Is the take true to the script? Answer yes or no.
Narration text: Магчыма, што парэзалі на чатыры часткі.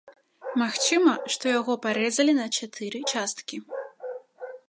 no